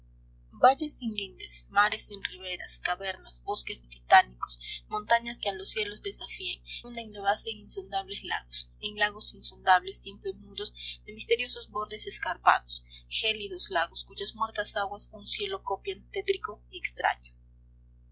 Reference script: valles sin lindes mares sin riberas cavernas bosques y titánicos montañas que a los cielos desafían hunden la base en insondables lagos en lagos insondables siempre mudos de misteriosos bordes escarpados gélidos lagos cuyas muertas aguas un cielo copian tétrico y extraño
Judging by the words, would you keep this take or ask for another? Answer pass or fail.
pass